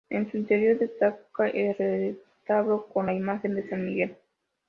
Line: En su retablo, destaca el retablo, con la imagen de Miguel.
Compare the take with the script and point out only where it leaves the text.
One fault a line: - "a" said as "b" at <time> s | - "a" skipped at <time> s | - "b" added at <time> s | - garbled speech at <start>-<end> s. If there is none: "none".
- "retablo" said as "interior" at 0.4 s
- "San" added at 3.7 s